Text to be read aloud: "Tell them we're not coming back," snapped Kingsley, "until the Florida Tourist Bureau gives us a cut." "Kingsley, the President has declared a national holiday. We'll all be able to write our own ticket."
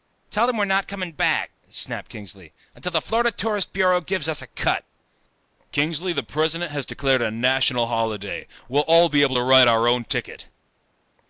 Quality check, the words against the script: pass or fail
pass